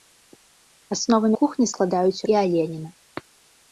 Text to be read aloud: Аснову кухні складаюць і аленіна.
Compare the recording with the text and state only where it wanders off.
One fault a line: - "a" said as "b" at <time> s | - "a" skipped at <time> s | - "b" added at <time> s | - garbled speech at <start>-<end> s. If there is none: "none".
none